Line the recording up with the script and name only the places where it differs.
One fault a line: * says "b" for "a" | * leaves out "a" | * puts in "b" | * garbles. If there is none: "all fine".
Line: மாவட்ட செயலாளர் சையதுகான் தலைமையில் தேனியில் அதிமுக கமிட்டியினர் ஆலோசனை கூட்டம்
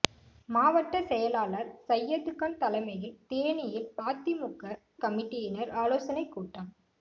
all fine